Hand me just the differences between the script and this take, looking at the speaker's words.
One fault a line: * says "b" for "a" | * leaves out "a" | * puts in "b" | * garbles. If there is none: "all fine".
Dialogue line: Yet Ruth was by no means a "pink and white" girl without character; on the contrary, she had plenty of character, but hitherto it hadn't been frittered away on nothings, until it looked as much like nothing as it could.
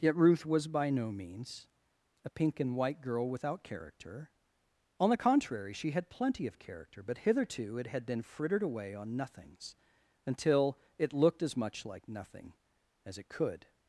* says "had" for "hadn't"